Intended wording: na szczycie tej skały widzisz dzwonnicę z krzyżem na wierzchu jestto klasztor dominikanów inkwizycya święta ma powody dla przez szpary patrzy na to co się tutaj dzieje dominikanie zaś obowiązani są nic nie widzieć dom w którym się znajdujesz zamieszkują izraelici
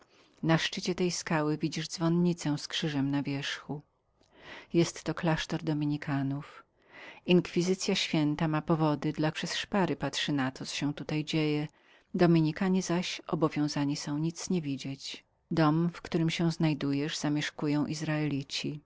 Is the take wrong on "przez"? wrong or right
right